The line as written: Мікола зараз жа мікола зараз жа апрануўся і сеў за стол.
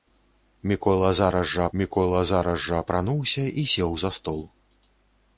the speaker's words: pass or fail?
pass